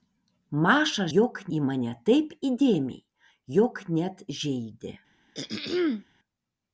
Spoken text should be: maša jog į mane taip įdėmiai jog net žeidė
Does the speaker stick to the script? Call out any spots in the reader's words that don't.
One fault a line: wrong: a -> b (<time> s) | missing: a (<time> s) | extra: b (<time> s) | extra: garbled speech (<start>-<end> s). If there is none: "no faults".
no faults